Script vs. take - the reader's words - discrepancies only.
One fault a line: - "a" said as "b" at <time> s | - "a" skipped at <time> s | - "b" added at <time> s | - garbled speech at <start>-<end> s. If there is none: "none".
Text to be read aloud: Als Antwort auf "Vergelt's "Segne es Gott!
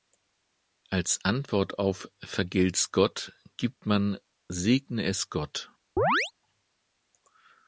- "Gott gibt man" added at 2.9 s